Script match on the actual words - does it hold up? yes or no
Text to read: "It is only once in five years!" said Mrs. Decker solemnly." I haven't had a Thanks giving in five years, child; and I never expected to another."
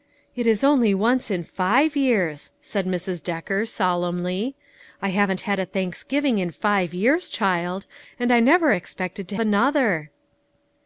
yes